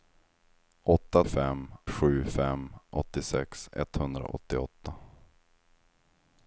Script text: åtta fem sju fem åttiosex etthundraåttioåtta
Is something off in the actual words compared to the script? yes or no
no